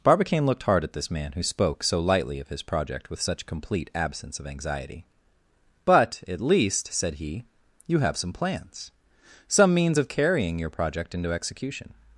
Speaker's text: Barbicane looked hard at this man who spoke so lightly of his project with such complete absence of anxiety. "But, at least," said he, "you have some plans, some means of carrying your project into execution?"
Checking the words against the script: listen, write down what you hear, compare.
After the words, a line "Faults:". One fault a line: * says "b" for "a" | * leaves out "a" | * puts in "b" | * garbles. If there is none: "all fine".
Barbicane looked hard at this man who spoke so lightly of his project with such complete absence of anxiety. "But, at least," said he, "you have some plans, some means of carrying your project into execution?"
Faults:
all fine